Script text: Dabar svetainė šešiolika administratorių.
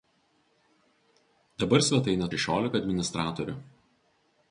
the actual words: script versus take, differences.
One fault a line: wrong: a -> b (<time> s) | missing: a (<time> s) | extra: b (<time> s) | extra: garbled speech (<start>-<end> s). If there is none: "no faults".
no faults